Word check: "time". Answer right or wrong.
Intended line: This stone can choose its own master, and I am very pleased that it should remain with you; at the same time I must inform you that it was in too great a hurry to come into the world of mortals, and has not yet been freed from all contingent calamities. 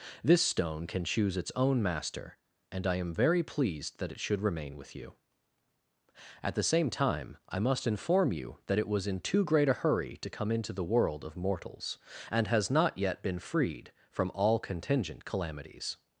right